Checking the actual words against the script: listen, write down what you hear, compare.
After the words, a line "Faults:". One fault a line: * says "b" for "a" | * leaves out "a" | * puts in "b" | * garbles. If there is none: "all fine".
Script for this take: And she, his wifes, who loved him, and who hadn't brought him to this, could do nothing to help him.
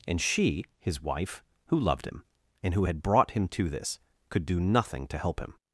And she, his wife, who loved him, and who had brought him to this, could do nothing to help him.
Faults:
* says "wife" for "wifes"
* says "had" for "hadn't"